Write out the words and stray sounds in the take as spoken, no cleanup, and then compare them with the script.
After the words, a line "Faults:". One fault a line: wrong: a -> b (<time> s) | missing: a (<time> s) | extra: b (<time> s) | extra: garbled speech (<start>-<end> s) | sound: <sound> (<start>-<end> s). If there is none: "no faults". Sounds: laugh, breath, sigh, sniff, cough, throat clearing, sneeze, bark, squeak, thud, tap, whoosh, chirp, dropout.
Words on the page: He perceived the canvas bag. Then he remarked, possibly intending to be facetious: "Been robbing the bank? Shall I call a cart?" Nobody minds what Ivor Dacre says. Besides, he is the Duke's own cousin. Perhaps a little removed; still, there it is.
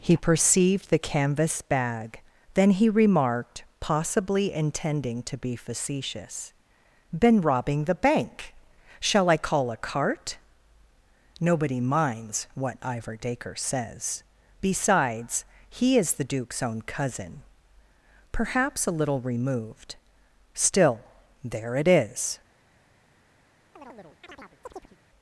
He perceived the canvas bag. Then he remarked, possibly intending to be facetious: "Been robbing the bank? Shall I call a cart?" Nobody minds what Ivor Dacre says. Besides, he is the Duke's own cousin. Perhaps a little removed; still, there it is.
Faults:
sound: chirp (23.8-25.0 s)